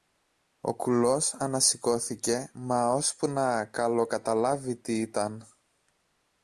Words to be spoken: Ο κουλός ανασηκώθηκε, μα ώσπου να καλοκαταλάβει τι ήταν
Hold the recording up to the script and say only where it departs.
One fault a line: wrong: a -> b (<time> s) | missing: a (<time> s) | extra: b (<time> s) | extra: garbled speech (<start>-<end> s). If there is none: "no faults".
no faults